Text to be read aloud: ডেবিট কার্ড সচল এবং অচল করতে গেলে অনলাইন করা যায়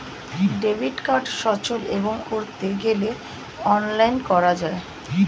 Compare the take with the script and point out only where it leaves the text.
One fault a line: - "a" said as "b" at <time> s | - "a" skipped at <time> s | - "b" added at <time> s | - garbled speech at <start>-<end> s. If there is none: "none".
- "অচল" skipped at 2.1 s